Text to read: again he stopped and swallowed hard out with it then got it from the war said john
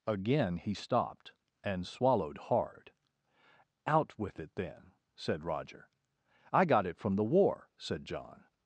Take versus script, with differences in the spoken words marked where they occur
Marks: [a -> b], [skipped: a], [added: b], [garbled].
again he stopped and swallowed hard out with it then [added: said roger i] got it from the war said john